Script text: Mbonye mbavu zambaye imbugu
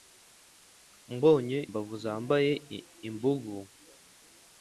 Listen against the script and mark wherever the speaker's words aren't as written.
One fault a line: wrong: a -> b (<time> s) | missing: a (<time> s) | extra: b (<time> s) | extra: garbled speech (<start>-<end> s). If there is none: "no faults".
no faults